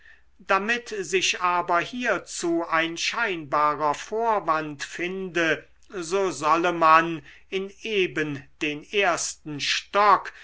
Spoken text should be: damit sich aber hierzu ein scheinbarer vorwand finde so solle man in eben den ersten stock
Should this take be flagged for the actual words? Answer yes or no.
no